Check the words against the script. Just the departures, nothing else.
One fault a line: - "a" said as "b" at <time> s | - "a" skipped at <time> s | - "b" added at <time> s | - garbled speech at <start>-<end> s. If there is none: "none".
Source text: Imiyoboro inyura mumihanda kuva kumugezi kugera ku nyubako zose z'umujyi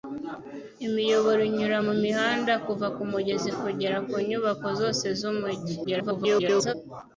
- garbled speech at 5.8-6.7 s